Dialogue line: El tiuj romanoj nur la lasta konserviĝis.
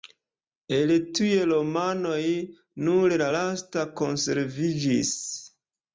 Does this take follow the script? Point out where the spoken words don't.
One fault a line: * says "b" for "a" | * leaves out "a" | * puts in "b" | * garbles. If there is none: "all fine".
all fine